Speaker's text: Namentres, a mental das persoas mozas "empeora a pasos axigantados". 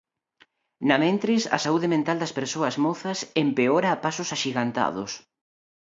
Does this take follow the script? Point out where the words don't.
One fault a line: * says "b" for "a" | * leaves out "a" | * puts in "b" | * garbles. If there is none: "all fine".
* puts in "saúde"